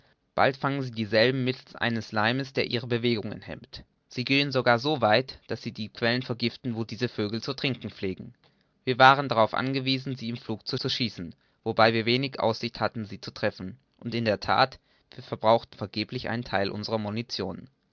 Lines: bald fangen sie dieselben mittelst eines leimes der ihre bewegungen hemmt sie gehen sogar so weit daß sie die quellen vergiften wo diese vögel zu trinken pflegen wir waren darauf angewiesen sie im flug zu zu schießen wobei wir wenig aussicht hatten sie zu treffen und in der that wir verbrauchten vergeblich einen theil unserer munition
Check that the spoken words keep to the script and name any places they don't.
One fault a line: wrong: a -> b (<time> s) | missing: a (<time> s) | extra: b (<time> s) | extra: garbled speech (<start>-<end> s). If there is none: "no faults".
no faults